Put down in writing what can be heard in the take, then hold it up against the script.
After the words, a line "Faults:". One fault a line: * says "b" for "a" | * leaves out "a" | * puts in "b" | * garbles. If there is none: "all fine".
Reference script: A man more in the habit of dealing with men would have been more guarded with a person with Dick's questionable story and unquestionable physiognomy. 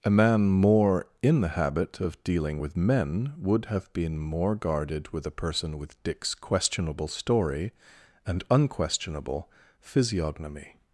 A man more in the habit of dealing with men would have been more guarded with a person with Dick's questionable story and unquestionable physiognomy.
Faults:
all fine